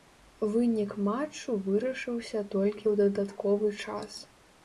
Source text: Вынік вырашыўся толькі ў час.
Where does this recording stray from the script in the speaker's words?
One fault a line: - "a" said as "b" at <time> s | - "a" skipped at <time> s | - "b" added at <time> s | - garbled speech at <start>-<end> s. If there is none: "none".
- "матчу" added at 1.1 s
- "дадатковы" added at 3.0 s